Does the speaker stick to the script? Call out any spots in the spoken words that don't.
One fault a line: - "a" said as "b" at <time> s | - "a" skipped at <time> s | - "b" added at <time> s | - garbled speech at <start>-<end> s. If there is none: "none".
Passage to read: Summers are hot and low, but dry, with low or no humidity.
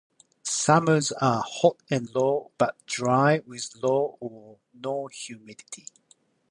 none